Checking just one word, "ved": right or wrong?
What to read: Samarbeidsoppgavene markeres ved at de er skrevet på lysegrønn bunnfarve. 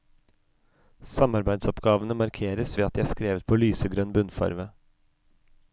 right